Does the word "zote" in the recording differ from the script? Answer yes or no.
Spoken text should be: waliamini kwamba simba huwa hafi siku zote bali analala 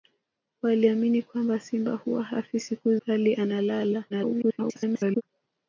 yes